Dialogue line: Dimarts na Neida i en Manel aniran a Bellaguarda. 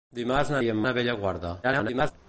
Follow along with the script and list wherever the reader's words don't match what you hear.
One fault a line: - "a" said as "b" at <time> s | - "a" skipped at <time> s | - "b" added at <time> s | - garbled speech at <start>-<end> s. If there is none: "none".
- "Neida" skipped at 0.6 s
- "Manel aniran" skipped at 0.8 s
- garbled speech at 1.6-2.1 s